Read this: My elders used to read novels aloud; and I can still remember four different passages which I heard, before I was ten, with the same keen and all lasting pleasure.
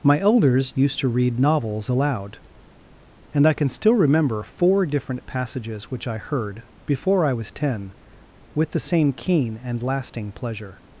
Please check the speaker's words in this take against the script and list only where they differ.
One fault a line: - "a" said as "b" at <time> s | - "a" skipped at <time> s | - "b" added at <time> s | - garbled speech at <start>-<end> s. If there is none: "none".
- "all" skipped at 9.8 s